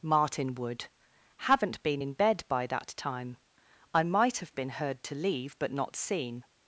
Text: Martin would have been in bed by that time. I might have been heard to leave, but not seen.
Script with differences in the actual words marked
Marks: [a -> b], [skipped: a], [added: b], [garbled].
Martin would [have -> haven't] been in bed by that time. I might have been heard to leave, but not seen.